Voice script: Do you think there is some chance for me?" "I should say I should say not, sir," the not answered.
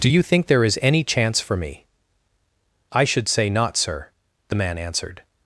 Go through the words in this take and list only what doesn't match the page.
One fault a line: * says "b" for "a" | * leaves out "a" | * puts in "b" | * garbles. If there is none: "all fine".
* says "any" for "some"
* leaves out "I should say"
* says "man" for "not"